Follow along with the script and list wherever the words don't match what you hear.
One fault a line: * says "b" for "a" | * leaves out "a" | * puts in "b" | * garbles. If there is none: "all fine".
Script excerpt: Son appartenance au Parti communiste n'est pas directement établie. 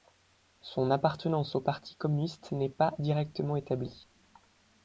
all fine